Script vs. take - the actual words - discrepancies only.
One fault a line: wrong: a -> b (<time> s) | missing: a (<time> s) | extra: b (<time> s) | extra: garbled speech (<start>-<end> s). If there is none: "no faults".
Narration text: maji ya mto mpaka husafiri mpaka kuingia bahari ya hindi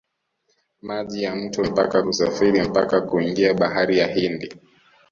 no faults